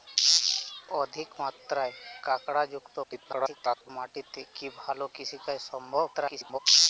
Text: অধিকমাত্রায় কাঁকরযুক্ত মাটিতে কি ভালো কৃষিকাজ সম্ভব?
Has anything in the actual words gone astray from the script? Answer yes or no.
yes